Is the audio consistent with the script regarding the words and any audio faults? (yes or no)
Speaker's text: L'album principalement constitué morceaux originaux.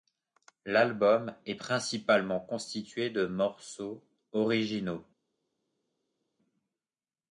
no